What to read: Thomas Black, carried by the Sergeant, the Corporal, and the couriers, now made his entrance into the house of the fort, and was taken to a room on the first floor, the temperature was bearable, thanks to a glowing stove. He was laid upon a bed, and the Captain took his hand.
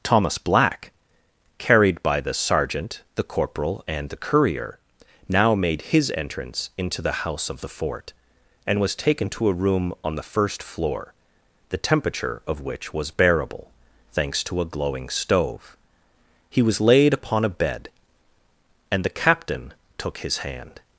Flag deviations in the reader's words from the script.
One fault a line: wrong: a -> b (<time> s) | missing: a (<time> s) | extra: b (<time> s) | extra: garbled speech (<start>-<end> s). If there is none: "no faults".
wrong: couriers -> courier (4.2 s)
extra: of which (12.5 s)